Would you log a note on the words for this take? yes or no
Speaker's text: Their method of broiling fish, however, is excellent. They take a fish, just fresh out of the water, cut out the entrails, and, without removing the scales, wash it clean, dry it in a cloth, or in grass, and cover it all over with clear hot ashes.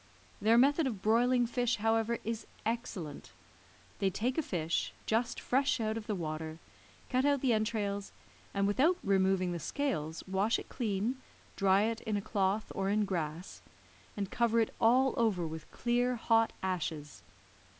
no